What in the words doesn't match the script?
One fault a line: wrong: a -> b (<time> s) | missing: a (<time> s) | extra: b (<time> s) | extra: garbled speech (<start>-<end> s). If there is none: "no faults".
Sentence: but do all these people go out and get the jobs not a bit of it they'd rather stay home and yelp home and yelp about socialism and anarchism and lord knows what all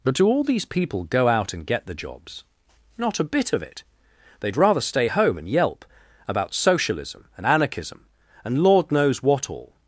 missing: home and yelp (5.8 s)